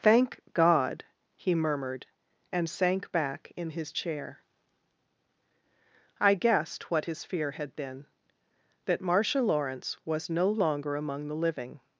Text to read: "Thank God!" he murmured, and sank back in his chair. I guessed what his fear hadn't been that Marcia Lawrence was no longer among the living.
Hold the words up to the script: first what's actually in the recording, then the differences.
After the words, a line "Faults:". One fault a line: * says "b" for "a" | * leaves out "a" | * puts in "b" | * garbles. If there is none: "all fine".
"Thank God!" he murmured, and sank back in his chair. I guessed what his fear had been that Marcia Lawrence was no longer among the living.
Faults:
* says "had" for "hadn't"